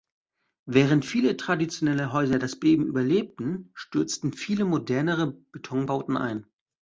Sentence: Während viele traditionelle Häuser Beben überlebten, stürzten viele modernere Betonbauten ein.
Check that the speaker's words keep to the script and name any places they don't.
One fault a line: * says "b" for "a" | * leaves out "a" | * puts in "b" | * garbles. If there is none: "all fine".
* puts in "das"